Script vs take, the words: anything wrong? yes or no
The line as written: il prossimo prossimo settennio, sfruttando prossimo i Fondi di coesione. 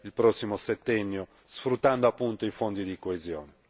yes